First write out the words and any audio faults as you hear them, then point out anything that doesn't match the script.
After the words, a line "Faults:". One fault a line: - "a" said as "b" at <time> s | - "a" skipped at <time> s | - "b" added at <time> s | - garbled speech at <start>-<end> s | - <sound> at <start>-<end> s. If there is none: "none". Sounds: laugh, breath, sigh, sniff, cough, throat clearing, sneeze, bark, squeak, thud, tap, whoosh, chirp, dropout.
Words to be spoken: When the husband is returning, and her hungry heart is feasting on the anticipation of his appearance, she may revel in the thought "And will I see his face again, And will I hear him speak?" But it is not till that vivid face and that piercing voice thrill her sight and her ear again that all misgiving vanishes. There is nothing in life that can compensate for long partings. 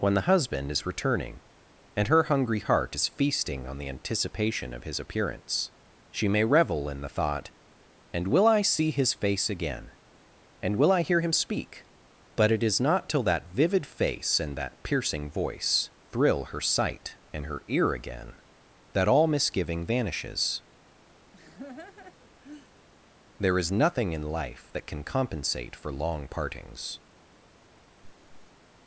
When the husband is returning, and her hungry heart is feasting on the anticipation of his appearance, she may revel in the thought "And will I see his face again, And will I hear him speak?" But it is not till that vivid face and that piercing voice thrill her sight and her ear again that all misgiving vanishes. There is nothing in life that can compensate for long partings.
Faults:
- laugh at 21.3-22.7 s
- laugh at 28.0-28.5 s